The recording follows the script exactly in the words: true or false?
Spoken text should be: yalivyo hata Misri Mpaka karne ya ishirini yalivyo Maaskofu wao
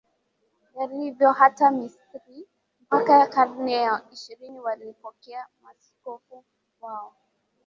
false